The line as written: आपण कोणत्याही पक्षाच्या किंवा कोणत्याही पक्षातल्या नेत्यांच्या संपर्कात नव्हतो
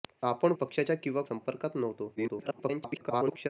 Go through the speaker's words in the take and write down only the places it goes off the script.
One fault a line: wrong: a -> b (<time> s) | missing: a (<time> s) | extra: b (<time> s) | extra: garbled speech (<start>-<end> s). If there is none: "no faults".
missing: कोणत्याही (0.5 s)
missing: कोणत्याही पक्षातल्या नेत्यांच्या (1.2 s)
extra: garbled speech (2.2-3.5 s)